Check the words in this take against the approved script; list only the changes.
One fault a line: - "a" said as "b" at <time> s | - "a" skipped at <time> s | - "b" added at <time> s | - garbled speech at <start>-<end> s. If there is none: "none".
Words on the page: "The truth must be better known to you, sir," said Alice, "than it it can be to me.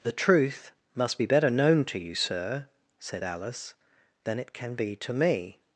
- "it" skipped at 4.5 s